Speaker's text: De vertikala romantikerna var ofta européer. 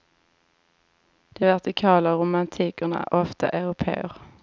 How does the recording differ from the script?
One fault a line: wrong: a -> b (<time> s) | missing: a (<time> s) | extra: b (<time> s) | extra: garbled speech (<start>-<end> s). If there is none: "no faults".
wrong: var -> är (3.0 s)